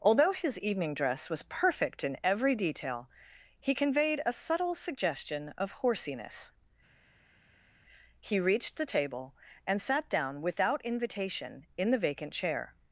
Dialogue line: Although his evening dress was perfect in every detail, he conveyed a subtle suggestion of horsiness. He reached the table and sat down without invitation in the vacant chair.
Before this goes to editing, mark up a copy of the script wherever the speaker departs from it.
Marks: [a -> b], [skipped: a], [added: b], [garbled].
Although his evening dress was perfect in every detail, he conveyed a subtle suggestion of horsiness. He reached the table and sat down without invitation in the vacant chair.